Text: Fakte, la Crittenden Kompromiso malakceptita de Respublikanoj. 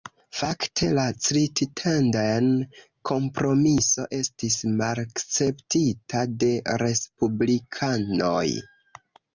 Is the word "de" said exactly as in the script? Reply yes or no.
yes